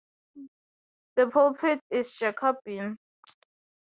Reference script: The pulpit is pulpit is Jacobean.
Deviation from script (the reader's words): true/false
true